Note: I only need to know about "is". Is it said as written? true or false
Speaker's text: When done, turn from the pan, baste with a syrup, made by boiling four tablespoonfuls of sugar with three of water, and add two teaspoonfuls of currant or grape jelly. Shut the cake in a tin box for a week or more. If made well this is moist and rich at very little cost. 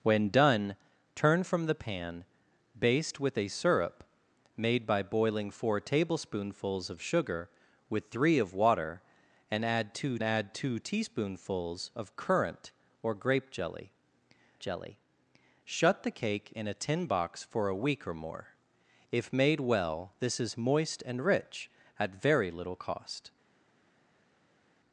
true